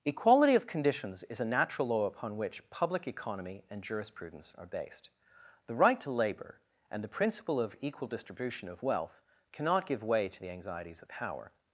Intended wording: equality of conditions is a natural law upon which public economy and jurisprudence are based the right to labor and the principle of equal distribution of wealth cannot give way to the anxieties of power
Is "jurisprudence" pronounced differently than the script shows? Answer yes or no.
no